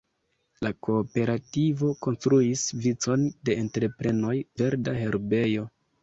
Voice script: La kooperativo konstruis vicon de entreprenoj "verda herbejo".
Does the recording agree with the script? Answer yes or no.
yes